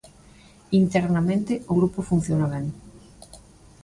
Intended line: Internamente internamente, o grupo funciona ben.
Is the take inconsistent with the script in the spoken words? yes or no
yes